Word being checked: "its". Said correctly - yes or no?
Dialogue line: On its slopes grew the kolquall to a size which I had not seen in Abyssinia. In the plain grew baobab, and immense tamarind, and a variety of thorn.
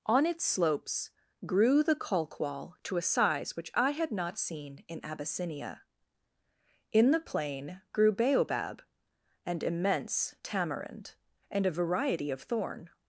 yes